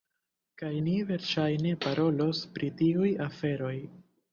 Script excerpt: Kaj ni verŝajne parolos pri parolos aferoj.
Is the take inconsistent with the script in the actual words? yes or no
yes